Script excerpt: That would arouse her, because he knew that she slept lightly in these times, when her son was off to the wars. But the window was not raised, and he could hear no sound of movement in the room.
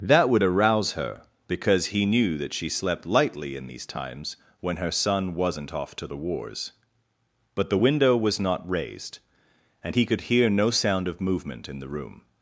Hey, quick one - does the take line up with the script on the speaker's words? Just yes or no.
no